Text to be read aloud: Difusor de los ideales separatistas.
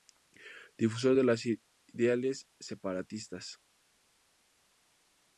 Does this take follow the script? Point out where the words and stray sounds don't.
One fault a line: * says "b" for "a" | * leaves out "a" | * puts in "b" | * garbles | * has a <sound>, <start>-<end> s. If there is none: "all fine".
all fine